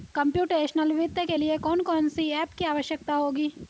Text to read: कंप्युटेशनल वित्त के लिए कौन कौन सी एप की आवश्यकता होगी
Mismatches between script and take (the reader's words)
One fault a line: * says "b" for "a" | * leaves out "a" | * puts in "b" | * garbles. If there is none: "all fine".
all fine